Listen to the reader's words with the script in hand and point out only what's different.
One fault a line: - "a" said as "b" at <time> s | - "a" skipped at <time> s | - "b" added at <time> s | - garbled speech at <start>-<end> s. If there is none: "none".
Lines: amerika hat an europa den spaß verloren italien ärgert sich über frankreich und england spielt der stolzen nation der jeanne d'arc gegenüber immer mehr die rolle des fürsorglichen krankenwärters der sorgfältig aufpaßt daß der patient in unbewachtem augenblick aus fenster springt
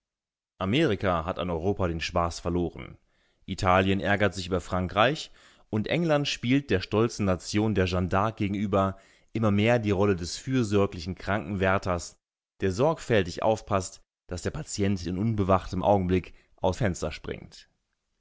none